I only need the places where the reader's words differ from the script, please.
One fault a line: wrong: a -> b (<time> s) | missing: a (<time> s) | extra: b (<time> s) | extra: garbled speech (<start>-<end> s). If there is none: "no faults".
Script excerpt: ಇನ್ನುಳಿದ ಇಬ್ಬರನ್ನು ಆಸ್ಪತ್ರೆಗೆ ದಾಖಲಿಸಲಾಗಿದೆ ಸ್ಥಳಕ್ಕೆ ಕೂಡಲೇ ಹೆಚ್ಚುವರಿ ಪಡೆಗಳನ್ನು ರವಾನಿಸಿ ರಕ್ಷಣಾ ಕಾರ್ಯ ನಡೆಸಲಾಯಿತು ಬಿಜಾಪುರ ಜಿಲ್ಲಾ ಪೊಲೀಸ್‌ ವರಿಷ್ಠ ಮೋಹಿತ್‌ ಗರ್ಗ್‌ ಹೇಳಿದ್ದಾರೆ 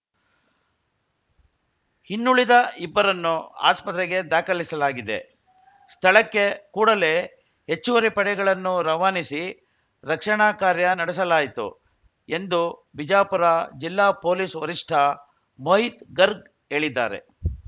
extra: ಎಂದು (12.3 s)